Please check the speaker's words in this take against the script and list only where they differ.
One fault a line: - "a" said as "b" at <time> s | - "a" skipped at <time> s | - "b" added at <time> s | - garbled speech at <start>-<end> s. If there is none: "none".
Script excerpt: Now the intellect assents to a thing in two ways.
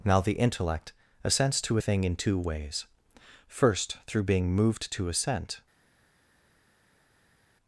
- "First through being moved to assent" added at 3.5 s